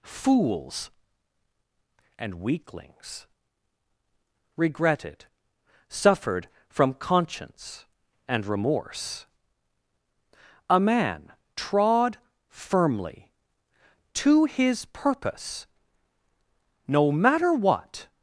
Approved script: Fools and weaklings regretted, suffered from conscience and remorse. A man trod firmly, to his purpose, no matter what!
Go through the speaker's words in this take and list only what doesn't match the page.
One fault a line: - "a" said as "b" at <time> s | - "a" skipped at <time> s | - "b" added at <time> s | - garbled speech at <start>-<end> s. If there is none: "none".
none